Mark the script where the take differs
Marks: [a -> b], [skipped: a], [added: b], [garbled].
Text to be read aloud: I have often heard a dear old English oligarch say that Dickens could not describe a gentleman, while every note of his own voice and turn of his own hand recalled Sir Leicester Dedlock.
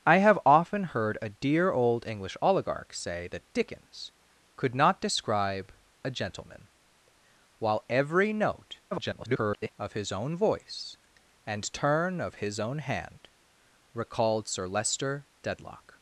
I have often heard a dear old English oligarch say that Dickens could not describe a gentleman, while every note [garbled] of his own voice and turn of his own hand recalled Sir Leicester Dedlock.